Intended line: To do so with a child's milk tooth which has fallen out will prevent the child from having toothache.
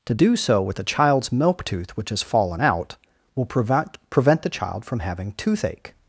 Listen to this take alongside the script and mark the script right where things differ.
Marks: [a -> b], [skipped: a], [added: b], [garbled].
To do so with a child's milk tooth which has fallen out will prevent [added: prevent] the child from having toothache.